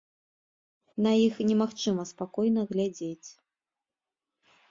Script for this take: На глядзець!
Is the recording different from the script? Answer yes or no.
yes